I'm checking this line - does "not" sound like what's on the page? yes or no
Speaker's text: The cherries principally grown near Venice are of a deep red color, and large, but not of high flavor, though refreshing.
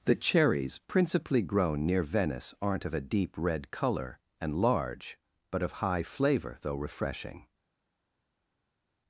no